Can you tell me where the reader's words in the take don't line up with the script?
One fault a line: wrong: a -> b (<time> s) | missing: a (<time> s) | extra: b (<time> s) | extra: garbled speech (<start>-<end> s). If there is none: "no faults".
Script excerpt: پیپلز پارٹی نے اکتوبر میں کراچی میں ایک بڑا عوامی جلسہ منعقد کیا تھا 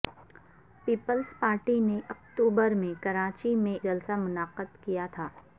missing: ایک بڑا عوامی (3.8 s)